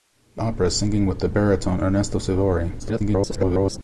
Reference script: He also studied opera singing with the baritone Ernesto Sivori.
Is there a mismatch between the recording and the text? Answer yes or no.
yes